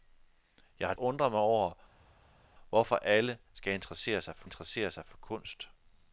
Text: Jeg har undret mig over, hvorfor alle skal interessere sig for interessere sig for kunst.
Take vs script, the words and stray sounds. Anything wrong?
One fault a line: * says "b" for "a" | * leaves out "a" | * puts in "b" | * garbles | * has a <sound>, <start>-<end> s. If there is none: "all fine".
all fine